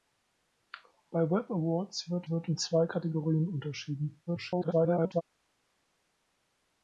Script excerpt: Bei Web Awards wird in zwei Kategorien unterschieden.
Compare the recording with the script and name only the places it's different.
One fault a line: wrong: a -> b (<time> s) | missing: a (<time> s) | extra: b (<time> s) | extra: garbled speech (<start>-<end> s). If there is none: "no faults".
extra: wird (2.3 s)
extra: garbled speech (4.3-5.2 s)